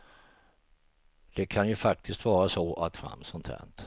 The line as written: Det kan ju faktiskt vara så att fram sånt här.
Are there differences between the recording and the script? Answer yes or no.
no